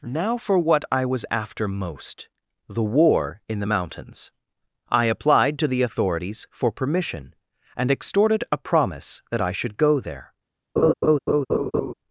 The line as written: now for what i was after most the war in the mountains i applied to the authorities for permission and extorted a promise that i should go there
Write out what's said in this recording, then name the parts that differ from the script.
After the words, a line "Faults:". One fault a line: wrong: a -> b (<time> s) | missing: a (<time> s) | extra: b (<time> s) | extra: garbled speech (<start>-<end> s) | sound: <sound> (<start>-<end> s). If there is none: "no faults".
now for what i was after most the war in the mountains i applied to the authorities for permission and extorted a promise that i should go there
Faults:
sound: laugh (10.8-11.9 s)